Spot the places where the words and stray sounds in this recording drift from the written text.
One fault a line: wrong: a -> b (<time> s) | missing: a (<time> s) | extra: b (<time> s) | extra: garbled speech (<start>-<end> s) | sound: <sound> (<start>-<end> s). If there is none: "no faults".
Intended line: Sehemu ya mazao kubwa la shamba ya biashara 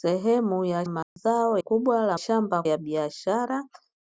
sound: dropout (1.0-1.2 s)